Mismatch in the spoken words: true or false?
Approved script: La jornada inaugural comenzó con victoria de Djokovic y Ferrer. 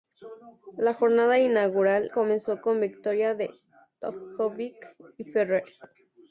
false